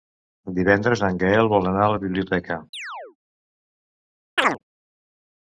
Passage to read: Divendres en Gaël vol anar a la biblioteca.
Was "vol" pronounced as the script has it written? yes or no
yes